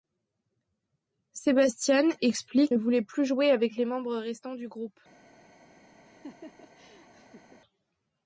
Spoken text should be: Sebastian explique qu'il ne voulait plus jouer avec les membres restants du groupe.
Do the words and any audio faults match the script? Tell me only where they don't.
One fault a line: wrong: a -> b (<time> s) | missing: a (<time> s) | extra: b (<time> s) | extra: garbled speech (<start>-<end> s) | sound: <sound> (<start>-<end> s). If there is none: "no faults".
missing: qu'il (2.7 s)
sound: laugh (6.1-7.6 s)